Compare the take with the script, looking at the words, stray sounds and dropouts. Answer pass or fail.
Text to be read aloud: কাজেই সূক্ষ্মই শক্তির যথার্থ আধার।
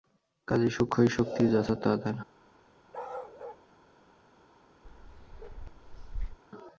fail